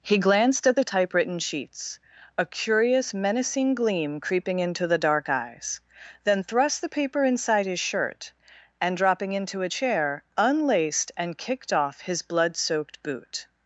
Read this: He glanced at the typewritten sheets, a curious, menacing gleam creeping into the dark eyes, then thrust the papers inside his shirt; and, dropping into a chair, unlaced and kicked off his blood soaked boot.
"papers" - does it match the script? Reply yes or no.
no